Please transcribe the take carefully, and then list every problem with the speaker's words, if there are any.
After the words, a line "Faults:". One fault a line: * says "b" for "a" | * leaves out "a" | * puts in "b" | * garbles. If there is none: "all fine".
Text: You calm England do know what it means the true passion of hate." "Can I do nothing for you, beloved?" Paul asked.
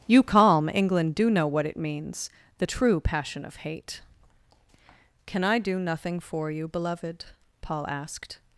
You calm England do know what it means the true passion of hate." "Can I do nothing for you, beloved?" Paul asked.
Faults:
all fine